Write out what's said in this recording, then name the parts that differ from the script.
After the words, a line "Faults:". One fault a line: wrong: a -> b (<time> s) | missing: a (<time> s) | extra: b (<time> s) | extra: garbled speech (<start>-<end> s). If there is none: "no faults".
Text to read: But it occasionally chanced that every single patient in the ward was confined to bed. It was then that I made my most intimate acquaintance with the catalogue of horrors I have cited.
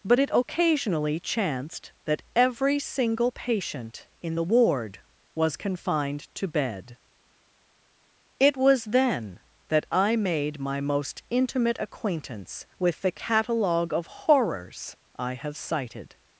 But it occasionally chanced that every single patient in the ward was confined to bed. It was then that I made my most intimate acquaintance with the catalogue of horrors I have cited.
Faults:
no faults